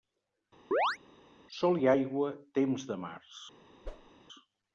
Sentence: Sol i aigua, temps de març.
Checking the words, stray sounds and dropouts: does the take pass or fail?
fail